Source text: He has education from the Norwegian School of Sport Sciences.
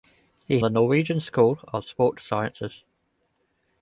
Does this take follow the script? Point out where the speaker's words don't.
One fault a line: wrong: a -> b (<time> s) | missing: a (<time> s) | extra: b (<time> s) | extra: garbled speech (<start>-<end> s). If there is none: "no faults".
missing: has education from (0.6 s)